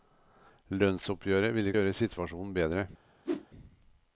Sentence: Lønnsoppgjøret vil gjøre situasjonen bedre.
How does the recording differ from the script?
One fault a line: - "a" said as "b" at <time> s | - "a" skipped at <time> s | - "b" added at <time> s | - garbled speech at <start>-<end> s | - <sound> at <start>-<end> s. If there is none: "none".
- whoosh at 3.2-3.5 s